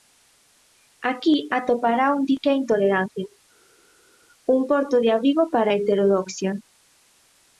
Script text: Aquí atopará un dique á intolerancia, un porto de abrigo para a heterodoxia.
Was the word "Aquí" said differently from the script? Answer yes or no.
no